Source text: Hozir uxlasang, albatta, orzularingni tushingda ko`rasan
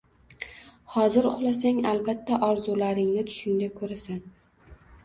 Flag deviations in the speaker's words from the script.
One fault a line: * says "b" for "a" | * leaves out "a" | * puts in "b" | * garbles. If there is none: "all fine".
all fine